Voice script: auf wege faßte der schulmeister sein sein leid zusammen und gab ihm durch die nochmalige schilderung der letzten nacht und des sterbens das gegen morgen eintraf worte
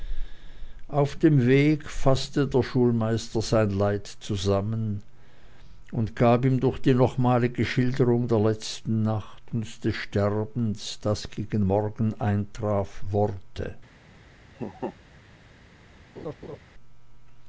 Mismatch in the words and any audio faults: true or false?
true